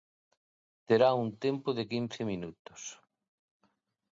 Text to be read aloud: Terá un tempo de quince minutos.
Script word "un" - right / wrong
right